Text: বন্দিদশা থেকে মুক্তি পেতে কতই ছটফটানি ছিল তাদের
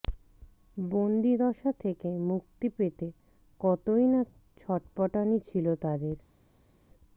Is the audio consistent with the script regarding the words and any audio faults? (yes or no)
no